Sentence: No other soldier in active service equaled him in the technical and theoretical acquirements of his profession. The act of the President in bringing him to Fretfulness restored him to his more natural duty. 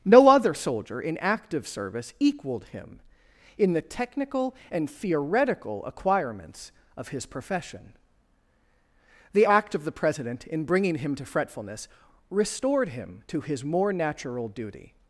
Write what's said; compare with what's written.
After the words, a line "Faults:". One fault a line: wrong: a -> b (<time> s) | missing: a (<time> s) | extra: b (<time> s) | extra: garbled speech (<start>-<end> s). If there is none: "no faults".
No other soldier in active service equaled him in the technical and theoretical acquirements of his profession. The act of the President in bringing him to Fretfulness restored him to his more natural duty.
Faults:
no faults